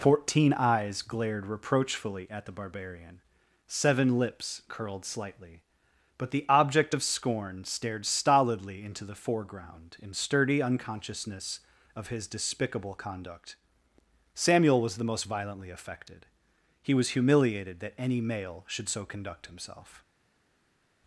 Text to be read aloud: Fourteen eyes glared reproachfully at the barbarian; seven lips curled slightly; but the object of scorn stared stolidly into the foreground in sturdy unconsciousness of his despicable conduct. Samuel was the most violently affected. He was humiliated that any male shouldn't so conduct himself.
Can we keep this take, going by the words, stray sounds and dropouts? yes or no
no